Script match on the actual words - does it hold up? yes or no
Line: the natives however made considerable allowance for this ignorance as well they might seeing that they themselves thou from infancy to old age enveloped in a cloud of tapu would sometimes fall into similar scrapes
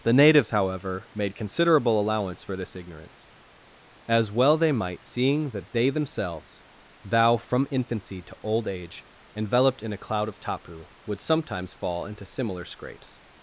yes